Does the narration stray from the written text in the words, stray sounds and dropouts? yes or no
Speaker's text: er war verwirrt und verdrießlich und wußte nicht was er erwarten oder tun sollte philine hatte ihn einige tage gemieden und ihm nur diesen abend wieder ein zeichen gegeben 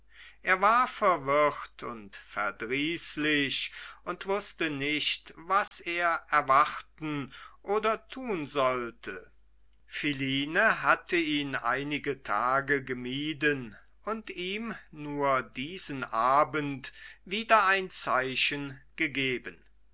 yes